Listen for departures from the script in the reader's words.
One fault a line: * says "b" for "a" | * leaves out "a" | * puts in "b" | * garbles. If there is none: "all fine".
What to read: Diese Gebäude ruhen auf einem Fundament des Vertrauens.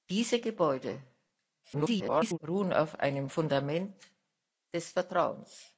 * garbles